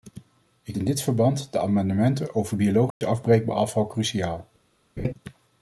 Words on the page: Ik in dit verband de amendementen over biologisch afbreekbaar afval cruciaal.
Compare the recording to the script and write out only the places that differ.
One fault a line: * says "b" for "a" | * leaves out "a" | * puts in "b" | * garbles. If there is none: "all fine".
all fine